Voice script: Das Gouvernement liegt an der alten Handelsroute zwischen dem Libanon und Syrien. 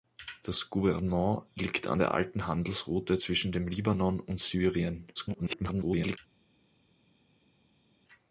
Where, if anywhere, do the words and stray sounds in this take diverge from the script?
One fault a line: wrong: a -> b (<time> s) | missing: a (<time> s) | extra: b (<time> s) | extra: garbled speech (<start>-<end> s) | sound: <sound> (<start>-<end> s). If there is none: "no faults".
extra: garbled speech (5.1-6.2 s)